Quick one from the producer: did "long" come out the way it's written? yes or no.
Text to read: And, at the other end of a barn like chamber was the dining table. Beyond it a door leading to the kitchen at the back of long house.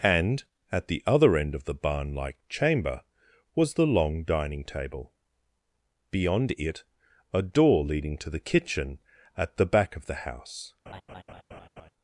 no